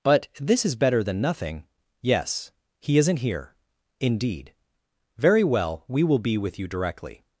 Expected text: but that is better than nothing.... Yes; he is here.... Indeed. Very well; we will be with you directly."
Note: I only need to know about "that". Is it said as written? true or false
false